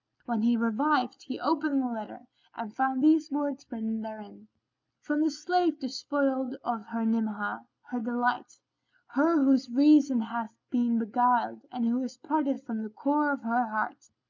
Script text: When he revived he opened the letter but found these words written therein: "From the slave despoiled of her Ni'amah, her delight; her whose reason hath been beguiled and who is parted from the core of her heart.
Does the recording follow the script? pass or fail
fail